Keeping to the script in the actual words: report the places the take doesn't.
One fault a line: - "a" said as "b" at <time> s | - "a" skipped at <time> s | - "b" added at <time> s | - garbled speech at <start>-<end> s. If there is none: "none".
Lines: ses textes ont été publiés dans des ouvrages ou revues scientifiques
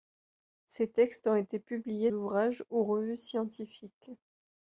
- "dans des" skipped at 2.1 s